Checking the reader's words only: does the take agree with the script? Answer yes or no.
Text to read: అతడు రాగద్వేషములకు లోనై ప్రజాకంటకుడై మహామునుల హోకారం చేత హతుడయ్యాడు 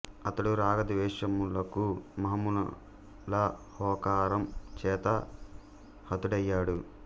no